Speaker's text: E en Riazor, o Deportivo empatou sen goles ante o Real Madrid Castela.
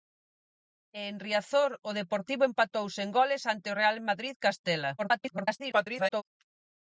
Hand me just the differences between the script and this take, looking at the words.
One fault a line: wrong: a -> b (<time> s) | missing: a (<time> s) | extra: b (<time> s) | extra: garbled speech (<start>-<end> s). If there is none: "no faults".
extra: garbled speech (5.0-6.2 s)